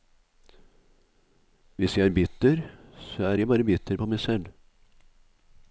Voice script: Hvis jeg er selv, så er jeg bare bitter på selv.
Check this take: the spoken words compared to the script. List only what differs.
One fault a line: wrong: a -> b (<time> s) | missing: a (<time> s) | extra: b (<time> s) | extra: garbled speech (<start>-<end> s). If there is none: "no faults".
wrong: selv -> bitter (2.1 s)
extra: meg (4.1 s)